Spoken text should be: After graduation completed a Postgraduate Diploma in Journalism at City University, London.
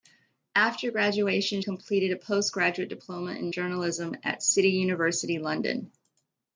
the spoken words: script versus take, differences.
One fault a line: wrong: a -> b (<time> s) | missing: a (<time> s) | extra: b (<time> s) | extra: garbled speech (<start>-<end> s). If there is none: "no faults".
no faults